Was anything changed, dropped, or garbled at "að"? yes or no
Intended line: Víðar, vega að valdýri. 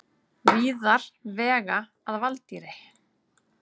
no